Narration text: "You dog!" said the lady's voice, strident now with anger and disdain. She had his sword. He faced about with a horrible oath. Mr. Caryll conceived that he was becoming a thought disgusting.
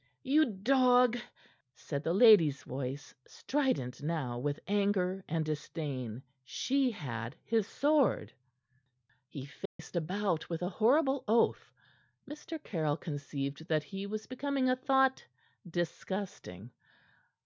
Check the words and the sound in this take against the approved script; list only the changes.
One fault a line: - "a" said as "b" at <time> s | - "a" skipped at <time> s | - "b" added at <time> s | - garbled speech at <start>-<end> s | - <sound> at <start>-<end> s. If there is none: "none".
- dropout at 9.7-9.8 s